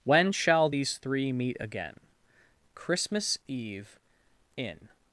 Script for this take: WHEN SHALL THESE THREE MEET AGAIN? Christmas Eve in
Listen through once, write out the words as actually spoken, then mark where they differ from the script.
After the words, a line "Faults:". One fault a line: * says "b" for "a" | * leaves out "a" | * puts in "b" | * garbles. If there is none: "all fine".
WHEN SHALL THESE THREE MEET AGAIN? Christmas Eve in
Faults:
all fine